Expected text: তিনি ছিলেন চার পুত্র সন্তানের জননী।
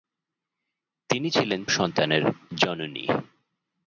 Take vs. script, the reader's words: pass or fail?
fail